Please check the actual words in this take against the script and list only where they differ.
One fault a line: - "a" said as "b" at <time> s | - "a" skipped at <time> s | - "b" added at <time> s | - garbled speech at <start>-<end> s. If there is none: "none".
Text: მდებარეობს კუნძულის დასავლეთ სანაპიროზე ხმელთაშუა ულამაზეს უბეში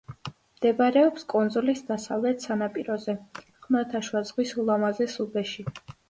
- "ზღვის" added at 4.3 s